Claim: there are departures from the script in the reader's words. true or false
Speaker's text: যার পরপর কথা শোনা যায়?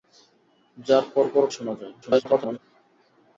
true